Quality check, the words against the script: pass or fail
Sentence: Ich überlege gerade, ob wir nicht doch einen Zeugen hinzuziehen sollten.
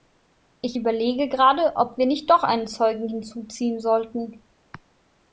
pass